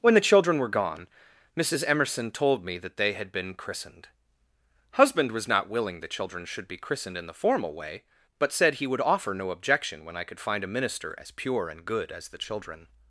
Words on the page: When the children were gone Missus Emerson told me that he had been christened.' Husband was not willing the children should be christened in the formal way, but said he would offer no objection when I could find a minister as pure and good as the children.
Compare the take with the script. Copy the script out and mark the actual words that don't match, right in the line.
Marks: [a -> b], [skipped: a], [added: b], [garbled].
When the children were gone Missus Emerson told me that [he -> they] had been christened.' Husband was not willing the children should be christened in the formal way, but said he would offer no objection when I could find a minister as pure and good as the children.